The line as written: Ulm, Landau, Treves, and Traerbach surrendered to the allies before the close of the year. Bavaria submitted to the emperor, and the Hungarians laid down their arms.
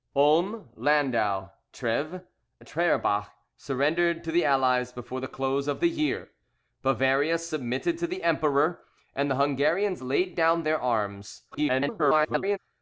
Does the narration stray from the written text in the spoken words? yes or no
yes